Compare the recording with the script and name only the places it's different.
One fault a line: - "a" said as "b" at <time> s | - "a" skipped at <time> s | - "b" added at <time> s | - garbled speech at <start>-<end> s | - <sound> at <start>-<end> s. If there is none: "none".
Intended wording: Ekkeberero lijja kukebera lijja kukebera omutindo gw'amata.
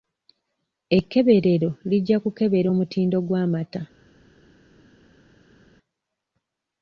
- "lijja kukebera" skipped at 2.7 s